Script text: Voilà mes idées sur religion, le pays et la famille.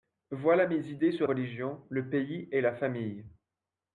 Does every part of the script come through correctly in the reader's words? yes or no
yes